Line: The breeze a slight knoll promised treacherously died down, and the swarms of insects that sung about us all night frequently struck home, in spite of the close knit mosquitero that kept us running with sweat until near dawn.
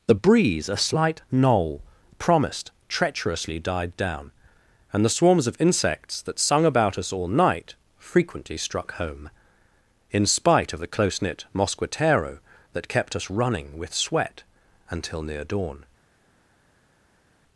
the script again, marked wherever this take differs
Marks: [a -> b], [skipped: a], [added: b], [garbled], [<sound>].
The breeze a slight knoll promised treacherously died down, and the swarms of insects that sung about us all night frequently struck home, in spite of the close knit mosquitero that kept us running with sweat until near dawn.